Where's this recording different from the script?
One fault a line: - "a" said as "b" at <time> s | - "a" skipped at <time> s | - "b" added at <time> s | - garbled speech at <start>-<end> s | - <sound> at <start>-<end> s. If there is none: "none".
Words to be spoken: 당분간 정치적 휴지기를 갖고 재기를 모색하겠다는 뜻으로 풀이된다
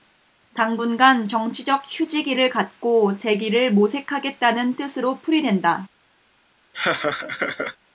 - laugh at 6.7-7.8 s